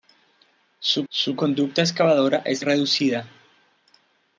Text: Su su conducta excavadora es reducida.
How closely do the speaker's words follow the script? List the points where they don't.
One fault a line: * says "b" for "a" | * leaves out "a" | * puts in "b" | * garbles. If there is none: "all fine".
all fine